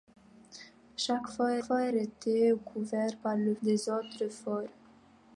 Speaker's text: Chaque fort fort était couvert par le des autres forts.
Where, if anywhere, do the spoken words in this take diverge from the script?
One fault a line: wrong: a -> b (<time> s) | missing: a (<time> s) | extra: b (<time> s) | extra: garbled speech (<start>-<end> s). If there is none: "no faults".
no faults